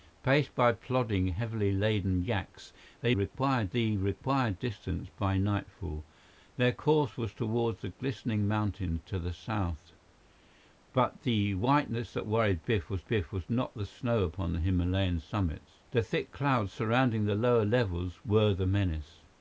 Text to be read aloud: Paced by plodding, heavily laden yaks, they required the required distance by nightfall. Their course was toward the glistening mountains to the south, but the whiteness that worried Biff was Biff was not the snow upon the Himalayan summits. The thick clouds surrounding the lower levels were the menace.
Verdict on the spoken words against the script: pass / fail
pass